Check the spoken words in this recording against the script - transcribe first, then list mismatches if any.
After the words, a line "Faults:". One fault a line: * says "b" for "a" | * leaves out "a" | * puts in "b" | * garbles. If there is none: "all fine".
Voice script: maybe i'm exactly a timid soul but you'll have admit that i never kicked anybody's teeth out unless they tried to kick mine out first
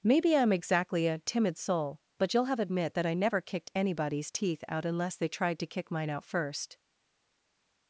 maybe i'm exactly a timid soul but you'll have admit that i never kicked anybody's teeth out unless they tried to kick mine out first
Faults:
all fine